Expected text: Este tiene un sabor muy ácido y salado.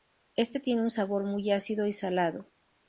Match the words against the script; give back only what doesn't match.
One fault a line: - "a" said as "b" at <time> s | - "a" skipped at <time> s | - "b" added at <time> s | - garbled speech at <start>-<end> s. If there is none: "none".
none